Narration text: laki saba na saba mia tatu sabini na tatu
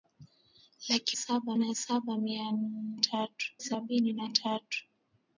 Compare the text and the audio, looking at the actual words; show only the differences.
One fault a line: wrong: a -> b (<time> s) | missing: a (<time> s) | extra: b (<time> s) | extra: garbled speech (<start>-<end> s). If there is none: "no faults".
no faults